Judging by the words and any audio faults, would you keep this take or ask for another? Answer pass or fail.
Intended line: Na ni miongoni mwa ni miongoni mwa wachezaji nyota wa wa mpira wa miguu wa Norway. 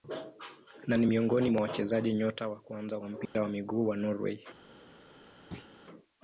fail